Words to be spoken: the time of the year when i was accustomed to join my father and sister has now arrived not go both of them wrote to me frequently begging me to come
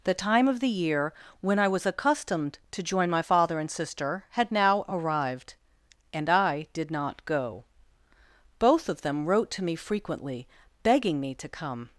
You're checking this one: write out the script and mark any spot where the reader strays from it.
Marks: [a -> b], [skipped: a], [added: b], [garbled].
the time of the year when i was accustomed to join my father and sister [has -> had] now arrived [added: and i did] not go both of them wrote to me frequently begging me to come